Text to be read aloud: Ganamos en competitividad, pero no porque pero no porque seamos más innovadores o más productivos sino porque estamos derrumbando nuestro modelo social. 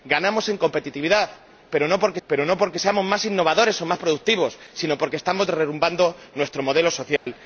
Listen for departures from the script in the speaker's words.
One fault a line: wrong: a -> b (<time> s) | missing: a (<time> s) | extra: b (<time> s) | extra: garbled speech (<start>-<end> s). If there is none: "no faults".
no faults